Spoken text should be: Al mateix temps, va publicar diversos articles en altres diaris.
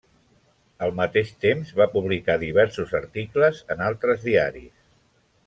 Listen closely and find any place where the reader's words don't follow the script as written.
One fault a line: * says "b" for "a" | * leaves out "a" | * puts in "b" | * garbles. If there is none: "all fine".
all fine